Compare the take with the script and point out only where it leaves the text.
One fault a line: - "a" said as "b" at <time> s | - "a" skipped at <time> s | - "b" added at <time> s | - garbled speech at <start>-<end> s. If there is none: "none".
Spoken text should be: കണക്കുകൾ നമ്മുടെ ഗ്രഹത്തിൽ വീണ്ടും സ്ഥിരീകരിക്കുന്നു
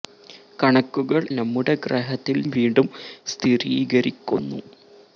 none